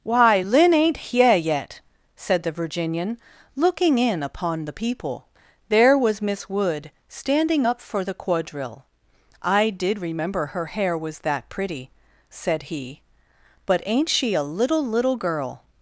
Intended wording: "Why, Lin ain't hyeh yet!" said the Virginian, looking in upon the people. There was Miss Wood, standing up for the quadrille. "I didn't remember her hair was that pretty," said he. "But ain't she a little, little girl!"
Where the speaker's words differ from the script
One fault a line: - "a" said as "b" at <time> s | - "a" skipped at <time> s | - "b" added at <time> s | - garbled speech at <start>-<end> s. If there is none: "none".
- "didn't" said as "did" at 9.7 s